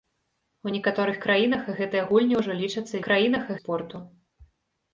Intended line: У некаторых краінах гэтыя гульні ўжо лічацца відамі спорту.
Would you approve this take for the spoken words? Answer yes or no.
no